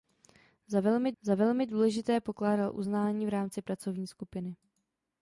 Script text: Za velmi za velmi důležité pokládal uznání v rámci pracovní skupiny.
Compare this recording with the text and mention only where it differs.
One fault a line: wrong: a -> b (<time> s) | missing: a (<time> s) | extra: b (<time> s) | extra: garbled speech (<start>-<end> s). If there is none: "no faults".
no faults